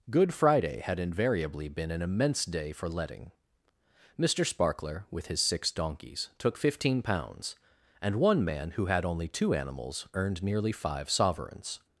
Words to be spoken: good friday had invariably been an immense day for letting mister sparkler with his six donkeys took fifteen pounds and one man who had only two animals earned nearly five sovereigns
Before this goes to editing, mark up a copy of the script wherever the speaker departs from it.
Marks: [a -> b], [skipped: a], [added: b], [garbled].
good friday had invariably been an immense day for letting mister sparkler with his six donkeys took fifteen pounds and one man who had only two animals earned nearly five sovereigns